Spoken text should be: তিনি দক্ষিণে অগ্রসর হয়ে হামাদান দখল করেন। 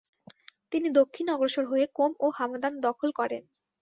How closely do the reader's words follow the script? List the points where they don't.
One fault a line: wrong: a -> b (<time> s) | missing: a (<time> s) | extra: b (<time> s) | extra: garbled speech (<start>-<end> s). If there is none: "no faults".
extra: কোম ও (2.0 s)